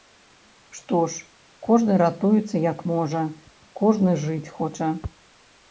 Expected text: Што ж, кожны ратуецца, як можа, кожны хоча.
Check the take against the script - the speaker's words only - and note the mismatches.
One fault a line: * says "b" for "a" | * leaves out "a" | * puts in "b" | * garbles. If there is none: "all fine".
* puts in "жыць"